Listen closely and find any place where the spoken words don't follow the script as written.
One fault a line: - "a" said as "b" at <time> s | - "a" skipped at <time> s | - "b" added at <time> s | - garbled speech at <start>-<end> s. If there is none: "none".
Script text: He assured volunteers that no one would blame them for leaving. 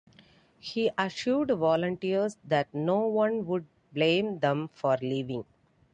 none